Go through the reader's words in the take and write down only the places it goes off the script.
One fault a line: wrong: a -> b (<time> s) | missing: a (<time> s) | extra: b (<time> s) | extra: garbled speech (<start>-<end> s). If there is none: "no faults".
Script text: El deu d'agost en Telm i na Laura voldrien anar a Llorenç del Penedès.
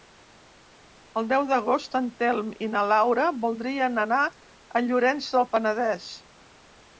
no faults